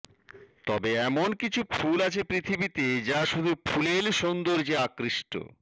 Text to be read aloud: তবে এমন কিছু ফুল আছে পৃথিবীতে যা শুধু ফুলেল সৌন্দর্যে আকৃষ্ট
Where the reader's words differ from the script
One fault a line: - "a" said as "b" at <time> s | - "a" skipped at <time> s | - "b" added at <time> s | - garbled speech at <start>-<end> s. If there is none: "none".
none